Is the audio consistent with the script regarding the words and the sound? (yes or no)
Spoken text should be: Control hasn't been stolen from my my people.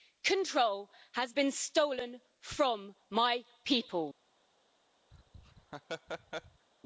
no